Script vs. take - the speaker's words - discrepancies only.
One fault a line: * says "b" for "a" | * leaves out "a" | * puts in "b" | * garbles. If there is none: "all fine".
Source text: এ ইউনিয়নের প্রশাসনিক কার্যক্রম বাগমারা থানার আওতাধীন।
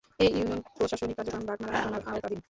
all fine